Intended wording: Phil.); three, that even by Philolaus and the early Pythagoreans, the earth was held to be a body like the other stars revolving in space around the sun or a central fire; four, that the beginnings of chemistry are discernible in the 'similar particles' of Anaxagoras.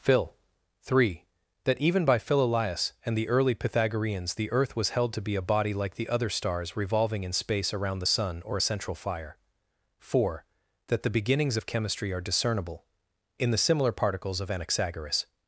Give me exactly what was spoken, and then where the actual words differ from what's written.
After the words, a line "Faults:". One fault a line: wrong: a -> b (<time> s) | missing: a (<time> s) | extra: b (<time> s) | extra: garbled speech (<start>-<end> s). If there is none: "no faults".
Phil.); three, that even by Philolaus and the early Pythagoreans, the earth was held to be a body like the other stars revolving in space around the sun or a central fire; four, that the beginnings of chemistry are discernible in the 'similar particles' of Anaxagoras.
Faults:
no faults